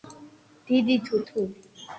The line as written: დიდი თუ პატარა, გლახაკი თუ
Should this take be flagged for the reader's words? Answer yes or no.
yes